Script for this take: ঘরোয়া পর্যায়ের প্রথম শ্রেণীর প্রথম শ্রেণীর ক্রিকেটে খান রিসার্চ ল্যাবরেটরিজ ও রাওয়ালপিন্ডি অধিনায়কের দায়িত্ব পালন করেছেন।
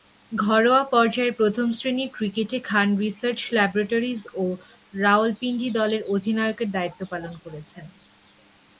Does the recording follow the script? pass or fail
fail